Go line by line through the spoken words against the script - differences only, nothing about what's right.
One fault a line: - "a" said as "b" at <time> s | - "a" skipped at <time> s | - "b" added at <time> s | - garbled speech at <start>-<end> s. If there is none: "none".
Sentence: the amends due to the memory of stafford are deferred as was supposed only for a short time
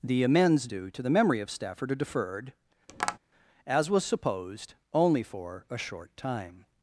none